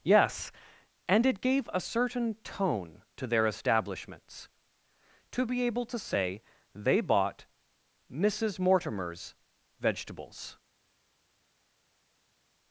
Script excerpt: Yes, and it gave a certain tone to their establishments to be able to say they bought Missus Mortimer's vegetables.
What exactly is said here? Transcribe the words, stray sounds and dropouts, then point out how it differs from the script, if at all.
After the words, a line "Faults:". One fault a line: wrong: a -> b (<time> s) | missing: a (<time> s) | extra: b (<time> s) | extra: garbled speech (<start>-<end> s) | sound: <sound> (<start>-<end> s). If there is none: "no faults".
Yes, and it gave a certain tone to their establishments to be able to say they bought Missus Mortimer's vegetables.
Faults:
no faults